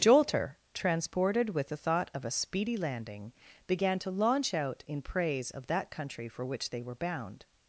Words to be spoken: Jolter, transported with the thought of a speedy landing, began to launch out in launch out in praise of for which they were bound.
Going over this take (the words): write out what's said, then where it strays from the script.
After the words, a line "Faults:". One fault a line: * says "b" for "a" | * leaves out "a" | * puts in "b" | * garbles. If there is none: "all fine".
Jolter, transported with the thought of a speedy landing, began to launch out in praise of that country for which they were bound.
Faults:
* says "praise of that country" for "launch out in praise of"